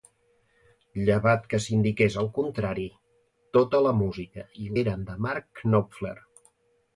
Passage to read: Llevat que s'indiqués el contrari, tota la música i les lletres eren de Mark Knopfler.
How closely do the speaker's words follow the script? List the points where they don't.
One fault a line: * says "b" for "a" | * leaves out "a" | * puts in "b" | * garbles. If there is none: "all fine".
* leaves out "les lletres"